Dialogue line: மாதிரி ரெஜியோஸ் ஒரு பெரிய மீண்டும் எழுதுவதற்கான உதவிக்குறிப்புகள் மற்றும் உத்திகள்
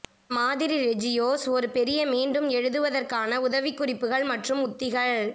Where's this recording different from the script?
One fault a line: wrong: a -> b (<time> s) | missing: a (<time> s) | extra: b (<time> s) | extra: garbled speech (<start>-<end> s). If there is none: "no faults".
no faults